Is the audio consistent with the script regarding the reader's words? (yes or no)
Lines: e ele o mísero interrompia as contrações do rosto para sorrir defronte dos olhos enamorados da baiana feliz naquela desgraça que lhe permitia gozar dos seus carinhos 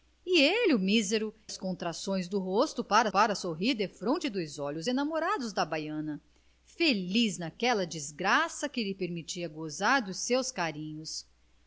no